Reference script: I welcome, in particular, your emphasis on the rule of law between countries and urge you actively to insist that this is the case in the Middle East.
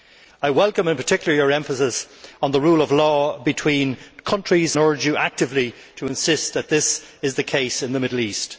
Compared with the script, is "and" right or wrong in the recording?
wrong